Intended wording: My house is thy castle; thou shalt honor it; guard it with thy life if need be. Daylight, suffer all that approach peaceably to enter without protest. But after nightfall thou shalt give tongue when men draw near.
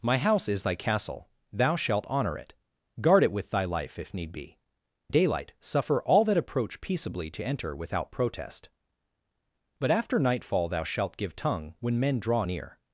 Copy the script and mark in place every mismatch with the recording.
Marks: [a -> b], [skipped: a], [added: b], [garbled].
My house is thy castle; thou shalt honor it; guard it with thy life if need be. Daylight, suffer all that approach peaceably to enter without protest. But after nightfall thou shalt give tongue when men draw near.